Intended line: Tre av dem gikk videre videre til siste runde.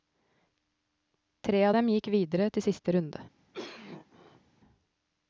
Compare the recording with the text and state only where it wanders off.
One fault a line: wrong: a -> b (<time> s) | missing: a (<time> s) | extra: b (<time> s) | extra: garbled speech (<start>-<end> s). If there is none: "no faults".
missing: videre (2.5 s)